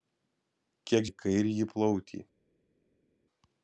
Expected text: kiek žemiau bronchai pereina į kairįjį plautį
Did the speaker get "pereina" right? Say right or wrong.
wrong